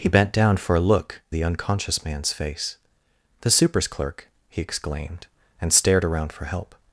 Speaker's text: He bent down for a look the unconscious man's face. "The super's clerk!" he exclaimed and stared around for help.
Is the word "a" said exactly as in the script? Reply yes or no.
yes